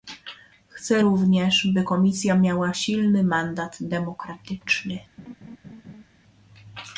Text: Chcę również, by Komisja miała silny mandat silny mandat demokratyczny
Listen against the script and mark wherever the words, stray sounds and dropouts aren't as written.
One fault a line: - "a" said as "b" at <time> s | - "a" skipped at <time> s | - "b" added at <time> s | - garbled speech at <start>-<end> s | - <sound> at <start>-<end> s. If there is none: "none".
- "silny mandat" skipped at 3.8 s
- laugh at 5.2-6.0 s